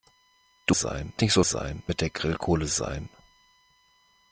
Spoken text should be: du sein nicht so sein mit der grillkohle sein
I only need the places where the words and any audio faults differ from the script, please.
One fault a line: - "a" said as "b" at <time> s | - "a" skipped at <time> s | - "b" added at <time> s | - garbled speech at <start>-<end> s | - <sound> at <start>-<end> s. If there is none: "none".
none